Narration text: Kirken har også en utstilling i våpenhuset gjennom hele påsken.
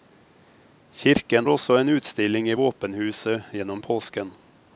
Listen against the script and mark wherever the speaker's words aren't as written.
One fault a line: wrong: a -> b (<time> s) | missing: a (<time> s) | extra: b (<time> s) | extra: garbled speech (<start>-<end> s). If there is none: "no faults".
missing: har (1.5 s)
missing: hele (3.8 s)